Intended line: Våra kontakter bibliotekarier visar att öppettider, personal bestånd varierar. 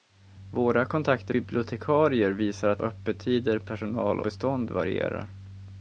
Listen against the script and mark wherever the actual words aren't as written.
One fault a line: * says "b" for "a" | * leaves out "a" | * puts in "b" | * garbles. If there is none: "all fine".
all fine